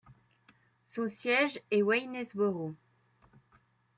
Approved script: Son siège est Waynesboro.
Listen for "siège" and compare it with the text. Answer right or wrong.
right